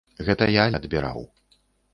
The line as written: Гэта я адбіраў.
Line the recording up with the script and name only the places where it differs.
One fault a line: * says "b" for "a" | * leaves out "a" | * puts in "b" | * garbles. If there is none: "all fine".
all fine